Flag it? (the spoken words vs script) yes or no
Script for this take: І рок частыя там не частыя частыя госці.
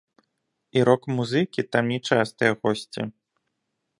yes